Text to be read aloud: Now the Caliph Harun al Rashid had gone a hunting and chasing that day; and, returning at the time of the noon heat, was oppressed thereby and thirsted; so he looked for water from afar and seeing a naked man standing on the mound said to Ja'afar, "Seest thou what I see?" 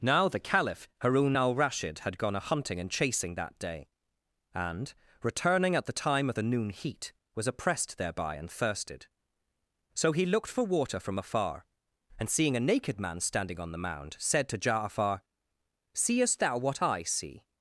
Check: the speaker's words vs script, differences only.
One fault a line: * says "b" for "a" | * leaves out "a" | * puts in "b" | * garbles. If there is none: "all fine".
all fine